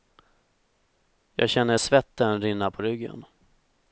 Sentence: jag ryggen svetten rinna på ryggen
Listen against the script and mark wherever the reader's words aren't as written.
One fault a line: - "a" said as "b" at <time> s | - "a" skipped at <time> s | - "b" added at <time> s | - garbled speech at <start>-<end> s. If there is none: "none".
- "ryggen" said as "känner" at 1.5 s